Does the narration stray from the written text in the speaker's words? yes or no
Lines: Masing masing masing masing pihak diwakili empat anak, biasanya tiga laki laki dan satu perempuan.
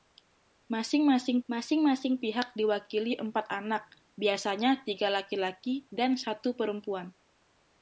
no